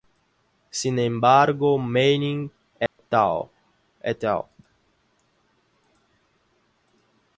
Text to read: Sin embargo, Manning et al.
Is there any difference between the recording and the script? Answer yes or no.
no